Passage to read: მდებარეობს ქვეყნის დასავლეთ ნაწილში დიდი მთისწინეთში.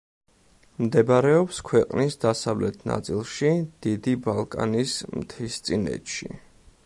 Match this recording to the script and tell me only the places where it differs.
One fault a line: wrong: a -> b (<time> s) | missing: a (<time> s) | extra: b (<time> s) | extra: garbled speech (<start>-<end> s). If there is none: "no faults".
extra: ბალკანის (4.3 s)